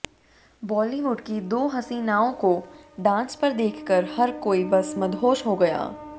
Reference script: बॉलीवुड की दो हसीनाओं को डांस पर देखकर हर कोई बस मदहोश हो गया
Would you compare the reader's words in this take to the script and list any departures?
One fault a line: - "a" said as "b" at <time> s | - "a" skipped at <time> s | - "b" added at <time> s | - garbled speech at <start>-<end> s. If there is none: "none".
none